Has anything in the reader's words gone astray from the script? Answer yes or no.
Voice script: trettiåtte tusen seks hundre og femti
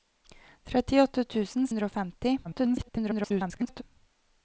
yes